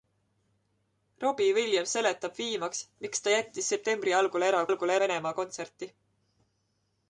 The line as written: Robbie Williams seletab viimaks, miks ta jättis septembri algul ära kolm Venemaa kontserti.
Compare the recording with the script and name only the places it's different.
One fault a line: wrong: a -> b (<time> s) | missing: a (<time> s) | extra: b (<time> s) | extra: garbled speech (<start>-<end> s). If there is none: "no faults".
wrong: kolm -> algul (4.7 s)